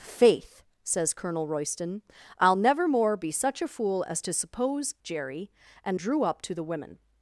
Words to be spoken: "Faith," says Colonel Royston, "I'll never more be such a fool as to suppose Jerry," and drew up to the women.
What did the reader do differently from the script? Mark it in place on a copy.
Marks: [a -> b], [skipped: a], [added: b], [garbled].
"Faith," says Colonel Royston, "I'll never more be such a fool as to suppose Jerry," and drew up to the women.